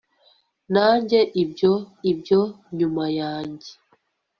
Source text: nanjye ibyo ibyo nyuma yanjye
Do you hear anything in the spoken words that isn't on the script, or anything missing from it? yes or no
no